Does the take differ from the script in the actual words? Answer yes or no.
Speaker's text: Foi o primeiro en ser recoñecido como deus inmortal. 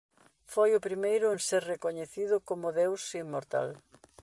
no